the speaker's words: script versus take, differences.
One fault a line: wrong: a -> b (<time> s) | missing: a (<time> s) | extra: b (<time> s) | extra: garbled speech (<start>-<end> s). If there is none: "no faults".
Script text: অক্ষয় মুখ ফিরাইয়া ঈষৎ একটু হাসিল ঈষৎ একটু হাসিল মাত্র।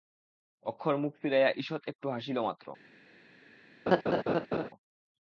missing: ঈষৎ একটু হাসিল (2.4 s)